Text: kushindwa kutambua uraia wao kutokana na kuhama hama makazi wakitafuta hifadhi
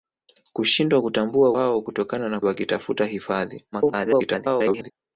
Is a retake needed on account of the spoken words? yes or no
yes